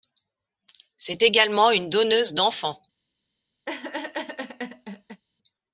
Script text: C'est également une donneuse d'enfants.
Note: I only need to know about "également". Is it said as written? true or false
true